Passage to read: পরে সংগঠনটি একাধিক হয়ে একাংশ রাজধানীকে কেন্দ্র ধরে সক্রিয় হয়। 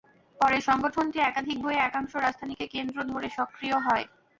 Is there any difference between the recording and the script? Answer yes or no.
no